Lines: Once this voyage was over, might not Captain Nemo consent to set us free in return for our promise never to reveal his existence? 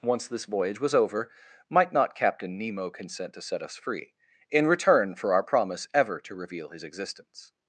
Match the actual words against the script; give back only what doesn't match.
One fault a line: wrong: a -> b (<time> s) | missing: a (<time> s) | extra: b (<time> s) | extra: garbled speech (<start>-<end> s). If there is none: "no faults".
wrong: never -> ever (5.9 s)